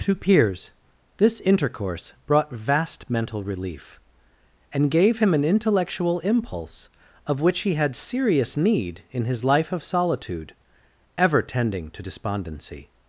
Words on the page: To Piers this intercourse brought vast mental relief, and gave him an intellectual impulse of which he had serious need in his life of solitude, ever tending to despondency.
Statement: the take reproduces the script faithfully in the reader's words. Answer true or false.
true